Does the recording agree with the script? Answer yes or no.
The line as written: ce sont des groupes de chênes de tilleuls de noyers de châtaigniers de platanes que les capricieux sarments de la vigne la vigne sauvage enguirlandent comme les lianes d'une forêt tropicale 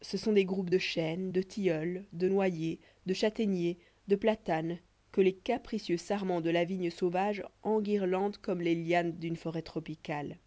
no